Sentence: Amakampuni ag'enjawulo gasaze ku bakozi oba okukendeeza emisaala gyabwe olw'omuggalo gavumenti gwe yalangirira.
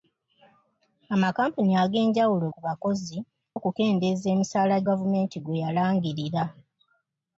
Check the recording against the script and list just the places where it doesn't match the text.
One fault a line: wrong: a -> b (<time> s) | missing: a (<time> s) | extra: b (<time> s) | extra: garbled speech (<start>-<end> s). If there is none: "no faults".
missing: gasaze (2.5 s)
missing: oba (3.2 s)
missing: gyabwe olw'omuggalo (4.8 s)